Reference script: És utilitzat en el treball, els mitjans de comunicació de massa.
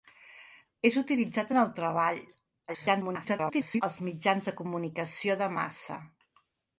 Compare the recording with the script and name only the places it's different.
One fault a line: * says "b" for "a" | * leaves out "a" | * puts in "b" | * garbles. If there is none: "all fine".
* garbles